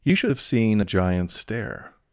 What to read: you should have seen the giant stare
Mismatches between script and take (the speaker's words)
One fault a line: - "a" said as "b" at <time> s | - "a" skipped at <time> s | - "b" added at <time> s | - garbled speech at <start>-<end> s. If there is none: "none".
- "the" said as "a" at 0.8 s